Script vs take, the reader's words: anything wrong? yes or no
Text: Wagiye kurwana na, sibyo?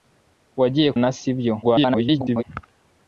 yes